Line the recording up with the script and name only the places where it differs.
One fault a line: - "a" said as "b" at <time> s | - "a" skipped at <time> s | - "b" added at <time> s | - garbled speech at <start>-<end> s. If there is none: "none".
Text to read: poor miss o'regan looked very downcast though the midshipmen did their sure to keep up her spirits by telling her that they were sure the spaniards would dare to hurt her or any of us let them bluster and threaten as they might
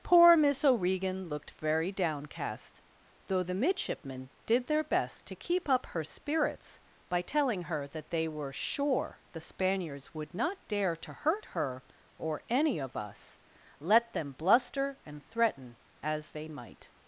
- "sure" said as "best" at 4.8 s
- "not" added at 10.3 s